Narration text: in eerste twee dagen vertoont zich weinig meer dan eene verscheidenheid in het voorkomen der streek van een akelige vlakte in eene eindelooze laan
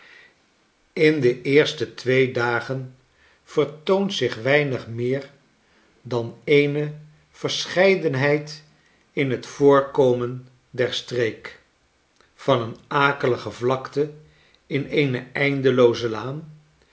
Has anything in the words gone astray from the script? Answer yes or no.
yes